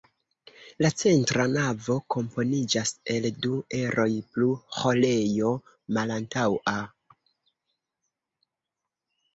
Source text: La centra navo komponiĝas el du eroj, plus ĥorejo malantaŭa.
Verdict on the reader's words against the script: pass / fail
pass